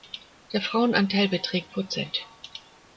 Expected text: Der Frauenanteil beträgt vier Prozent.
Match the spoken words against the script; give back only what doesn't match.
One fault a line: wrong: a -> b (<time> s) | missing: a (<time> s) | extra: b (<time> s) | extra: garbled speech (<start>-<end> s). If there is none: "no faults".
missing: vier (1.8 s)